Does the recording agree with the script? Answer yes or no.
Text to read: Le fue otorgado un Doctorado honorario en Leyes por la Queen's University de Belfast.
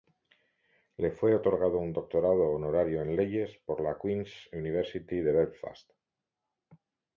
yes